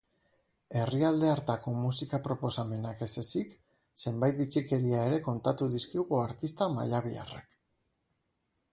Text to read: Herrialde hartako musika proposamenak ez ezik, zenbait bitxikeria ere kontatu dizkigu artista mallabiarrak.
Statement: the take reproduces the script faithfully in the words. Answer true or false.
true